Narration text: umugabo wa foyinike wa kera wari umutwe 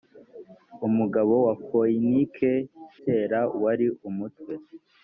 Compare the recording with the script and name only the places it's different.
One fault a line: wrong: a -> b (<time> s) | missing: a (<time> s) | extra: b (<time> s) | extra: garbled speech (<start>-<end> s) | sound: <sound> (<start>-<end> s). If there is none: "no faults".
missing: wa (2.5 s)